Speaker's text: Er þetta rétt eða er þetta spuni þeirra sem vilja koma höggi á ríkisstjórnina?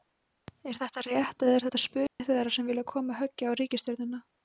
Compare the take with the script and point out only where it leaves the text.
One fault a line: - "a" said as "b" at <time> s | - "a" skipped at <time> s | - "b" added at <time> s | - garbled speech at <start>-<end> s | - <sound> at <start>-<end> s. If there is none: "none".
- dropout at 2.1-2.2 s